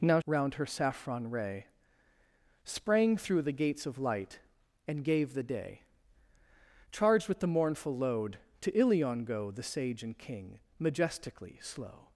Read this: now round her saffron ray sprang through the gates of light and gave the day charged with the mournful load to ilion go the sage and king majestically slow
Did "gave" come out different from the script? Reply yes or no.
no